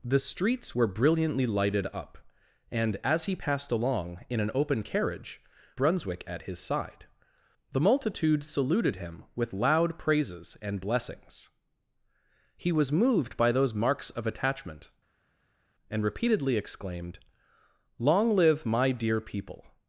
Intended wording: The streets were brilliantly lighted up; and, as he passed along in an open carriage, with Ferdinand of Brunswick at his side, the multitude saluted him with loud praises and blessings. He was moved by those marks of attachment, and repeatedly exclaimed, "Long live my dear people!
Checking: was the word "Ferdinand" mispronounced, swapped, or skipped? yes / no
yes